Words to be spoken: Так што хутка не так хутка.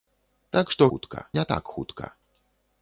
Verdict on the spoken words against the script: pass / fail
pass